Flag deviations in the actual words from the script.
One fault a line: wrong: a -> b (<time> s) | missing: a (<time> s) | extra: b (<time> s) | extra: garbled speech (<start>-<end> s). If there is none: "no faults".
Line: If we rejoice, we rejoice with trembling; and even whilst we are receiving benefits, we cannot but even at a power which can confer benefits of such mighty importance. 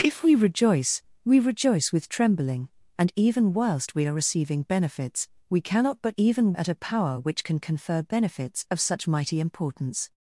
no faults